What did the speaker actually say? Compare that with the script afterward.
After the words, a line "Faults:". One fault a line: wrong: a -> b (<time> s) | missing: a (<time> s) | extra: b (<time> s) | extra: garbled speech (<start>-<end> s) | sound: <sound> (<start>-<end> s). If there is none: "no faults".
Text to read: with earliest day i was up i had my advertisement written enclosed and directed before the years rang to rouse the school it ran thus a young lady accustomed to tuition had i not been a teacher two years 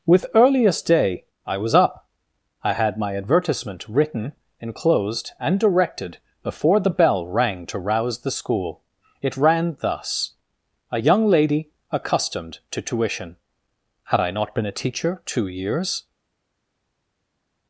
with earliest day i was up i had my advertisement written enclosed and directed before the bell rang to rouse the school it ran thus a young lady accustomed to tuition had i not been a teacher two years
Faults:
wrong: years -> bell (6.9 s)